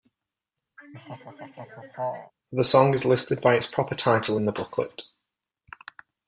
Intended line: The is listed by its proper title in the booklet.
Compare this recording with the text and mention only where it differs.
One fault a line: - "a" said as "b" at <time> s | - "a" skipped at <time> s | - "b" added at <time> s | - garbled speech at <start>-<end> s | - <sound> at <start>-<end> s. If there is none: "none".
- laugh at 0.8-2.3 s
- "song" added at 2.6 s